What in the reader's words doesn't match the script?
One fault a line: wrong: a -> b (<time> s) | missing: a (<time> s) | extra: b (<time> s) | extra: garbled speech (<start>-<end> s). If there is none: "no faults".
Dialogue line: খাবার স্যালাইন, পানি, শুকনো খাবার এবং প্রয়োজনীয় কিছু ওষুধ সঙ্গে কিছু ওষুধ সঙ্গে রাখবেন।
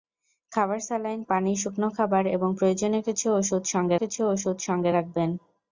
no faults